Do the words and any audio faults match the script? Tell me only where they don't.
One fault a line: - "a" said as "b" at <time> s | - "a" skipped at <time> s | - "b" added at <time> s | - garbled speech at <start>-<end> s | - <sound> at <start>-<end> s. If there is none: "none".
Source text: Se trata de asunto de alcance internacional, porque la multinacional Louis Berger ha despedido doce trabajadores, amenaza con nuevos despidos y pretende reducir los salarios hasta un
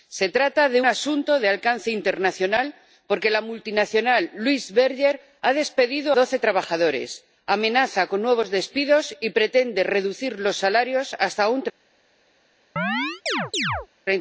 - chirp at 12.8-13.9 s